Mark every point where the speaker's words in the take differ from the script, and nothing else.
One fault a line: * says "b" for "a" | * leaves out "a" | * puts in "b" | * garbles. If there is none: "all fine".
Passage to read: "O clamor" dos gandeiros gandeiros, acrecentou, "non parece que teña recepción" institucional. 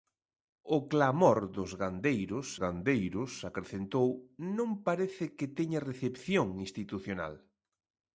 all fine